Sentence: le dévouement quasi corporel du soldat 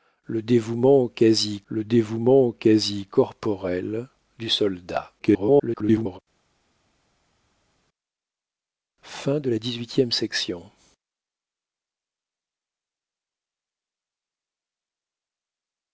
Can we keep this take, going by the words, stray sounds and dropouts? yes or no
no